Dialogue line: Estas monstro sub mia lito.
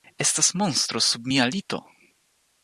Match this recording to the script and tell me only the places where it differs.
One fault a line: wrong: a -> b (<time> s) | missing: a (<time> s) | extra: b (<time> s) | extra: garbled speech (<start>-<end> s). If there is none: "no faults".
no faults